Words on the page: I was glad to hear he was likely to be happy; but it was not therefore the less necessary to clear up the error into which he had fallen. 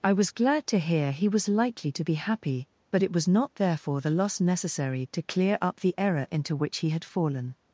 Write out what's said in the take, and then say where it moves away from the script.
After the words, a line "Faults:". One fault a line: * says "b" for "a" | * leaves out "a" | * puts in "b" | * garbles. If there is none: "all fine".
I was glad to hear he was likely to be happy; but it was not therefore the loss necessary to clear up the error into which he had fallen.
Faults:
* says "loss" for "less"